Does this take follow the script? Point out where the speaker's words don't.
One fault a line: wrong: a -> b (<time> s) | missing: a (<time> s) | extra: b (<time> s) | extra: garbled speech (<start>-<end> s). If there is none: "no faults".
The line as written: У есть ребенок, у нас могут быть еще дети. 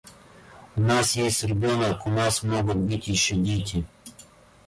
extra: нас (0.8 s)